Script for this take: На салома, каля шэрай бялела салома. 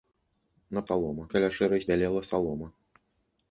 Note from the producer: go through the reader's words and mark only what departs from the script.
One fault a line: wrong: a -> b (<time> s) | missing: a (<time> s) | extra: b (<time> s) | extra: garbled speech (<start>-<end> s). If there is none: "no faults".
no faults